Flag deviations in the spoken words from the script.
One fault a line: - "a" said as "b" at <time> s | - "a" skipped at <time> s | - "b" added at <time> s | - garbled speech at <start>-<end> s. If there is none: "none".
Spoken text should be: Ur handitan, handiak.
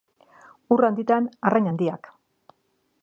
- "arrain" added at 1.5 s